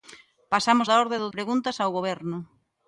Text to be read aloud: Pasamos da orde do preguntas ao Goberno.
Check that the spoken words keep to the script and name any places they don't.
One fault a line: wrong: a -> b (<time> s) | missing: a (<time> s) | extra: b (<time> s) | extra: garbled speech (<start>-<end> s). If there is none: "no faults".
no faults